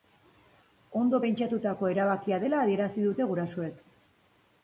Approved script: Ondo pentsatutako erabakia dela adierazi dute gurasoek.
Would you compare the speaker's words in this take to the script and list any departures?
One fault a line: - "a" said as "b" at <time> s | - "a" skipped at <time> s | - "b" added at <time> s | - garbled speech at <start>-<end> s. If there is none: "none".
none